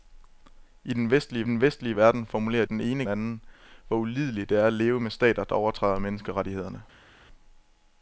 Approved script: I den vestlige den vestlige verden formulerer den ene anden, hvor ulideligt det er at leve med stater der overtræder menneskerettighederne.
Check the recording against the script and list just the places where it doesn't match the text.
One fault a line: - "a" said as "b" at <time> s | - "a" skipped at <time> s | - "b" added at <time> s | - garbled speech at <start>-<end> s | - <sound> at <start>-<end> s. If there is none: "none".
none